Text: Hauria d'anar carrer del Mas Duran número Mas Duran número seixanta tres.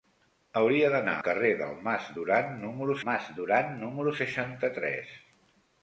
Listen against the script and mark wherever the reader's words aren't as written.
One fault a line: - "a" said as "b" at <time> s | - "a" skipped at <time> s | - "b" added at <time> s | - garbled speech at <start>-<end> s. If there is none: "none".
none